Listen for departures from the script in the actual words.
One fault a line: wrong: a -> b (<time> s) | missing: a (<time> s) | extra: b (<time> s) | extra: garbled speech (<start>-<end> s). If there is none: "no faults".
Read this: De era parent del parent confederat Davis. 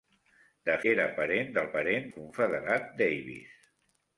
no faults